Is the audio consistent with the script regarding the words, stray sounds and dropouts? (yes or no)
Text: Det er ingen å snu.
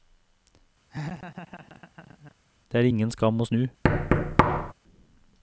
no